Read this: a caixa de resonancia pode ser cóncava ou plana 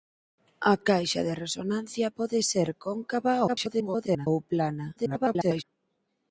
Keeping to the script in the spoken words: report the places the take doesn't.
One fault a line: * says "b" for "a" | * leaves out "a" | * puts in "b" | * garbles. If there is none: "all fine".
* garbles
* garbles